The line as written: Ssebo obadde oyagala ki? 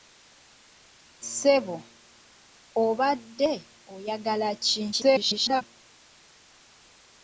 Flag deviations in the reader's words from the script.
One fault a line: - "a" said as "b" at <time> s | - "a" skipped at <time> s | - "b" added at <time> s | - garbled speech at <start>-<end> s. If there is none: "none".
- garbled speech at 4.9-5.6 s